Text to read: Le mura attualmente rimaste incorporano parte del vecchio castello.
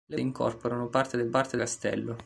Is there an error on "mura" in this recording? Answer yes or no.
yes